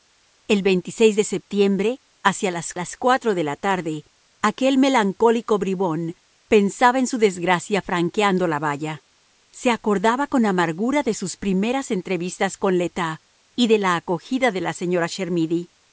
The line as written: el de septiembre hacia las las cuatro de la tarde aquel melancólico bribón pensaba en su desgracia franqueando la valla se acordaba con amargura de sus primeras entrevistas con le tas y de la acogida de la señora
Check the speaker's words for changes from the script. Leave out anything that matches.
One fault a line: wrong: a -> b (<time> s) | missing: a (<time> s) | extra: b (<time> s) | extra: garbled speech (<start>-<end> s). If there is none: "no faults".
no faults